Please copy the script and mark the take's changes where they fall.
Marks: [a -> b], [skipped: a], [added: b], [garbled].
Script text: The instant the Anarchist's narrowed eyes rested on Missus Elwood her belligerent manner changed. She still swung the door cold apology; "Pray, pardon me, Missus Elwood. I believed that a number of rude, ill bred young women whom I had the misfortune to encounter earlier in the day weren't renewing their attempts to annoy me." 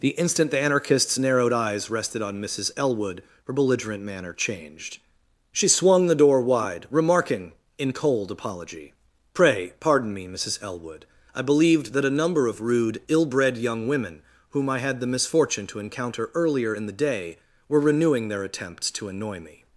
The instant the Anarchist's narrowed eyes rested on Missus Elwood her belligerent manner changed. She [skipped: still] swung the door [added: wide remarking in] cold apology; "Pray, pardon me, Missus Elwood. I believed that a number of rude, ill bred young women whom I had the misfortune to encounter earlier in the day [weren't -> were] renewing their attempts to annoy me."